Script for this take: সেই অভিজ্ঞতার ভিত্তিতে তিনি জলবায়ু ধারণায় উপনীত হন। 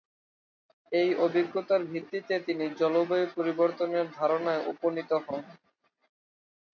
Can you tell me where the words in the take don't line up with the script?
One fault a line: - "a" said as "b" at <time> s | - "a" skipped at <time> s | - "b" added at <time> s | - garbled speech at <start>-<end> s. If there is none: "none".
- "সেই" said as "এই" at 0.9 s
- "পরিবর্তনের" added at 3.4 s